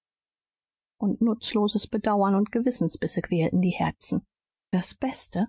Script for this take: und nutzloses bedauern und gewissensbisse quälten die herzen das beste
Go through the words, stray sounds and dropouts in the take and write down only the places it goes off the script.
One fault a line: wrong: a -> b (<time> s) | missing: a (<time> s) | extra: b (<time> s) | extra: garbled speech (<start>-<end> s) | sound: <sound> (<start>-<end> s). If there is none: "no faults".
no faults